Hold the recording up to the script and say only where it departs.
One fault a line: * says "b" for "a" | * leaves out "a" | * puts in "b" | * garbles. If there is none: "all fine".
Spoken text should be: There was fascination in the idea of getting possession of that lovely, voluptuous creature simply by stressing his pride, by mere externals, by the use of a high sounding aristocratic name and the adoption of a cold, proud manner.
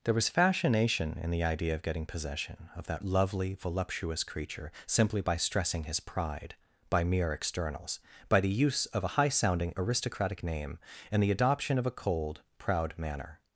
all fine